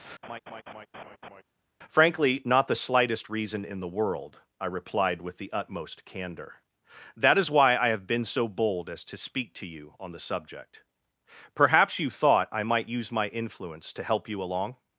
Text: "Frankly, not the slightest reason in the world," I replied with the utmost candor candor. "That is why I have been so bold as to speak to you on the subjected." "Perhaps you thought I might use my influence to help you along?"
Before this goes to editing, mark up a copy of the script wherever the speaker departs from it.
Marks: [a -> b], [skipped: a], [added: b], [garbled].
"Frankly, not the slightest reason in the world," I replied with the utmost candor [skipped: candor.] "That is why I have been so bold as to speak to you on the [subjected." -> subject] "Perhaps you thought I might use my influence to help you along?"